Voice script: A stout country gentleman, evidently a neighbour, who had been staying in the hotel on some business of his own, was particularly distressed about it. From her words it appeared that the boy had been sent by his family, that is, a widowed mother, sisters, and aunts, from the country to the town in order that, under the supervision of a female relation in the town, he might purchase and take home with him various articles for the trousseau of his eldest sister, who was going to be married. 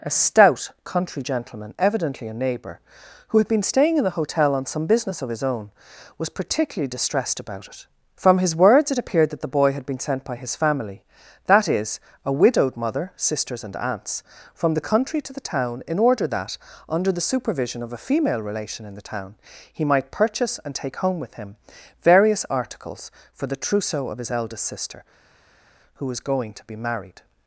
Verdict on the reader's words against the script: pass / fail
fail